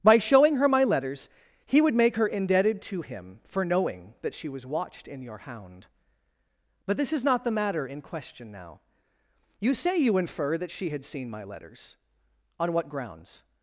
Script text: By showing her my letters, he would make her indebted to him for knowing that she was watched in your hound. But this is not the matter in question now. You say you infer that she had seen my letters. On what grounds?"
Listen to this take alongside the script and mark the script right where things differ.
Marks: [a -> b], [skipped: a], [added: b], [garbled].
By showing her my letters, he would make her indebted to him for knowing that she was watched in your hound. But this is not the matter in question now. You say you infer that she had seen my letters. On what grounds?"